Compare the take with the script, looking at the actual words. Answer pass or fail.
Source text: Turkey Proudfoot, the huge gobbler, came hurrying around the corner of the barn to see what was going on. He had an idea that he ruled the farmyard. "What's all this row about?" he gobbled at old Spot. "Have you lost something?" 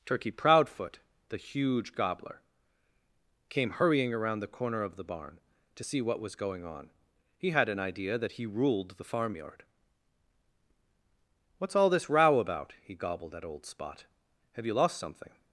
pass